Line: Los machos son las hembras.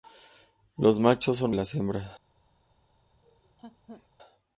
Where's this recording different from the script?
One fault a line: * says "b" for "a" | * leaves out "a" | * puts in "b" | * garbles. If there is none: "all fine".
all fine